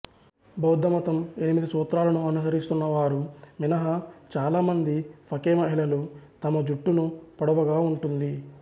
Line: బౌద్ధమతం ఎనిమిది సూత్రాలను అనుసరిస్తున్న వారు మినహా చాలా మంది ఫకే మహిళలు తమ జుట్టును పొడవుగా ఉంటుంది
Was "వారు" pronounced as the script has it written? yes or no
yes